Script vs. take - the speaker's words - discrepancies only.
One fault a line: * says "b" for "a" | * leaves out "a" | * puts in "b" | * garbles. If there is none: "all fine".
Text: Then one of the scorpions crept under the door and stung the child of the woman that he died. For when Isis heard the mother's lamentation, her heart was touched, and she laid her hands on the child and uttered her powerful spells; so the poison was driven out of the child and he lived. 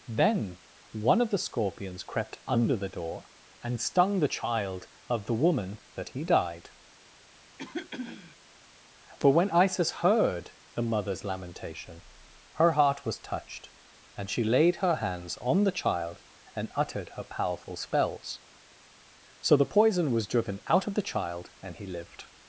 all fine